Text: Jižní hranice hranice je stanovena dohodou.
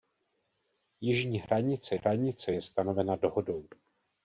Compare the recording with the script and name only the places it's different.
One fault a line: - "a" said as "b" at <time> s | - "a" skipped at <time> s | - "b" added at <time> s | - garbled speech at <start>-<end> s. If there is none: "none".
none